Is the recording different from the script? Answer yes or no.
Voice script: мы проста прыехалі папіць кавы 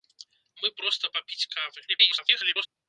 yes